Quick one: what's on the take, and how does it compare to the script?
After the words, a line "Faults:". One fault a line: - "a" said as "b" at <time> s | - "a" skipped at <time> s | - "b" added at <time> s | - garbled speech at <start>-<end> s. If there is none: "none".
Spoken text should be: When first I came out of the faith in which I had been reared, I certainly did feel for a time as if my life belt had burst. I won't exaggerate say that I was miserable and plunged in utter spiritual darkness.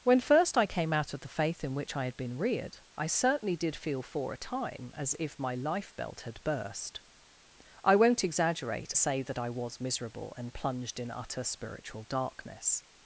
When first I came out of the faith in which I had been reared, I certainly did feel for a time as if my life belt had burst. I won't exaggerate say that I was miserable and plunged in utter spiritual darkness.
Faults:
none